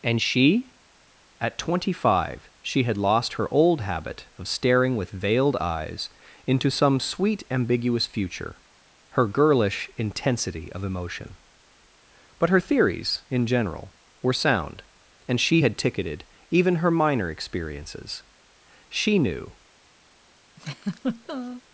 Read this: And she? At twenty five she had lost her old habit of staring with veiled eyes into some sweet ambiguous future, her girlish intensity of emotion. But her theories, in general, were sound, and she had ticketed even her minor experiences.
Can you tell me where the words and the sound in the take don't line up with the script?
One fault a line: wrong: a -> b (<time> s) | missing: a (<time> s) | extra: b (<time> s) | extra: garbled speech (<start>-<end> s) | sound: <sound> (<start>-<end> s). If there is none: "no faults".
extra: She knew (18.9 s)
sound: laugh (20.6-21.6 s)